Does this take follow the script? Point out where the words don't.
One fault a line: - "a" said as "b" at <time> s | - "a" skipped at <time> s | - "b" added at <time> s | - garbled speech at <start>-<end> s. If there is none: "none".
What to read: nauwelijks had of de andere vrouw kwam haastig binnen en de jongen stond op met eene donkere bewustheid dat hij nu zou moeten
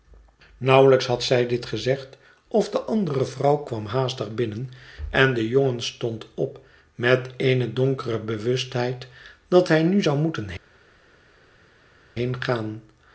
- "zij dit gezegd" added at 1.2 s